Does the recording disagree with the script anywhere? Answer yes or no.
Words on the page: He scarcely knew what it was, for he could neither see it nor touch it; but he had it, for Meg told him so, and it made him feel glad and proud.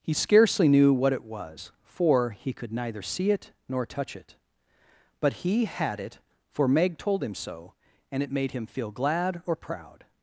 yes